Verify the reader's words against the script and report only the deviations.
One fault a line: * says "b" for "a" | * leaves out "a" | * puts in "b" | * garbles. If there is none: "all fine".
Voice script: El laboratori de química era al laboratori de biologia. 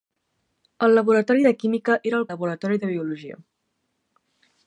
all fine